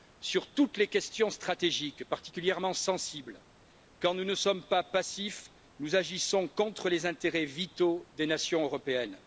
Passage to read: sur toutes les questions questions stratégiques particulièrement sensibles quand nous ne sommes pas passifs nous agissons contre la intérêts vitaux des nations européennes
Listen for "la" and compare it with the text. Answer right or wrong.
wrong